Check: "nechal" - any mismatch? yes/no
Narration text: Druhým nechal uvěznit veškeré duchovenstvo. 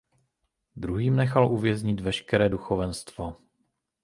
no